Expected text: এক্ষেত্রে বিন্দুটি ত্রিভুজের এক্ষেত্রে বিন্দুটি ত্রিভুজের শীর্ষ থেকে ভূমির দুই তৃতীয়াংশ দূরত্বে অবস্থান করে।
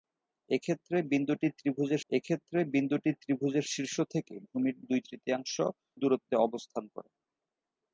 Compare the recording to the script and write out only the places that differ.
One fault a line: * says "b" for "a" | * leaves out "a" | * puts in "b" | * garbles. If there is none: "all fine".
all fine